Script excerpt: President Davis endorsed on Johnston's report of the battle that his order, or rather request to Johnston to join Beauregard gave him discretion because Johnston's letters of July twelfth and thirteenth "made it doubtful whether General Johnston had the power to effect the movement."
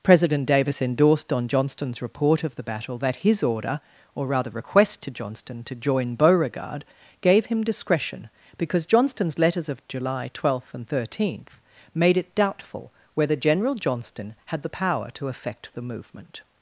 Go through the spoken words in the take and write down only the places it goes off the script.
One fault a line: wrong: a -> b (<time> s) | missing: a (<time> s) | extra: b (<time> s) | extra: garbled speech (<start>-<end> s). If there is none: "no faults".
no faults